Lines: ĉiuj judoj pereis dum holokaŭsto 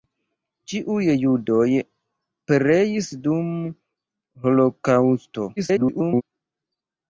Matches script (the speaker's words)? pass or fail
fail